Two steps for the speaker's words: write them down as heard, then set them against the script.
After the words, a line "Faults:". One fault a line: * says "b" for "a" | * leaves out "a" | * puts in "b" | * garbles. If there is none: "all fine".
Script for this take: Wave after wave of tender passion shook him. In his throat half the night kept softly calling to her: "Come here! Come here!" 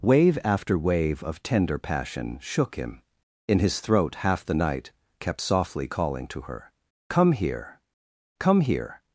Wave after wave of tender passion shook him. In his throat half the night kept softly calling to her: "Come here! Come here!"
Faults:
all fine